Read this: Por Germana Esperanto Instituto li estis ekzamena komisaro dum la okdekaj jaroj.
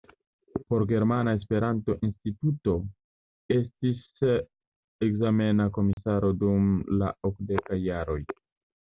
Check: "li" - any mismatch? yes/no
yes